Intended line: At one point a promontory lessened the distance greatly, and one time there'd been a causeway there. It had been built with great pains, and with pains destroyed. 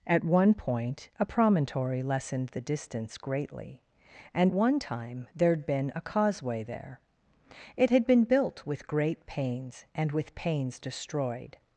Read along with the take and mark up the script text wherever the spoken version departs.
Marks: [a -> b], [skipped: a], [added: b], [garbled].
At one point a promontory lessened the distance greatly, and one time there'd been a causeway there. It had been built with great pains, and with pains destroyed.